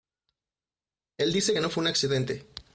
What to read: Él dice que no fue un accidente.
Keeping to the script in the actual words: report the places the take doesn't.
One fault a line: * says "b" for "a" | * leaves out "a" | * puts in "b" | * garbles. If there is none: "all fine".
all fine